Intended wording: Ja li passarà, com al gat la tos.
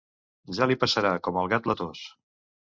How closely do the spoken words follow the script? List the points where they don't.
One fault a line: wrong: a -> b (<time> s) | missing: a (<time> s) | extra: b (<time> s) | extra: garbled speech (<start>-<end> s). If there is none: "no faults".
no faults